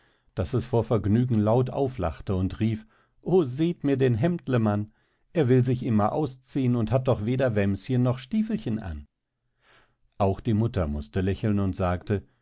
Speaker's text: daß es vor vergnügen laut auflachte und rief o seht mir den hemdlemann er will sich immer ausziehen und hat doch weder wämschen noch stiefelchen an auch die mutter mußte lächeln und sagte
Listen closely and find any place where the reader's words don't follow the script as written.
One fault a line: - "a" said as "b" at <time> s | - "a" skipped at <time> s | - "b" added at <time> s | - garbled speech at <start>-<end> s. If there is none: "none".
none